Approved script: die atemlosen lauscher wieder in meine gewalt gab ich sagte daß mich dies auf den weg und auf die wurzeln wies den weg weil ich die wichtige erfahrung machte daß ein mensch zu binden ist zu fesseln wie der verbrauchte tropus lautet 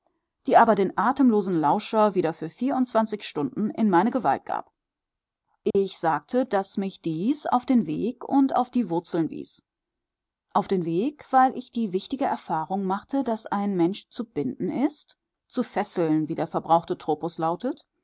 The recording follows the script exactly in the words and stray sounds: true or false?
false